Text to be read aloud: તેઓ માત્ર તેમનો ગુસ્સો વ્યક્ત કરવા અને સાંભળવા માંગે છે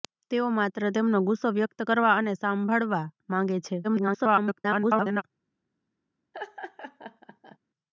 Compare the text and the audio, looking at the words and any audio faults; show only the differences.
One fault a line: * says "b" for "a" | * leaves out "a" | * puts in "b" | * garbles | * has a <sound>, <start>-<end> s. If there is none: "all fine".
* garbles
* has a laugh, 6.3-7.6 s